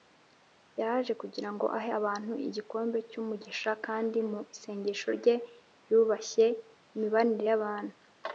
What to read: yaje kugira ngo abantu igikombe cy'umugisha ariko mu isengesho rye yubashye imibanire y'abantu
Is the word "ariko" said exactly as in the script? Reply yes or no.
no